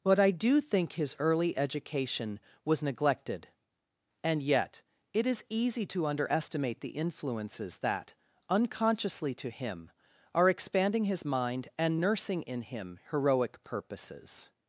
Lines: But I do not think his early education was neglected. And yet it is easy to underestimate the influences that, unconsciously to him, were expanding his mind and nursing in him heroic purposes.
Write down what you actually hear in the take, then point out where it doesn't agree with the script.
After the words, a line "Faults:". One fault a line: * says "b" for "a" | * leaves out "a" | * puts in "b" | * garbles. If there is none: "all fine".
But I do think his early education was neglected. And yet it is easy to underestimate the influences that, unconsciously to him, are expanding his mind and nursing in him heroic purposes.
Faults:
* leaves out "not"
* says "are" for "were"